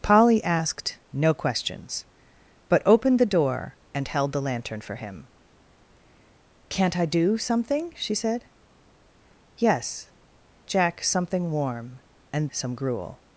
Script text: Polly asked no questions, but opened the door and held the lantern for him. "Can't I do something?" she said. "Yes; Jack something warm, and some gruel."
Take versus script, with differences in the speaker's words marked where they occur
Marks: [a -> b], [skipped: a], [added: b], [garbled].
Polly asked no questions, but opened the door and held the lantern for him. "Can't I do something?" she said. "Yes; Jack something warm, and some gruel."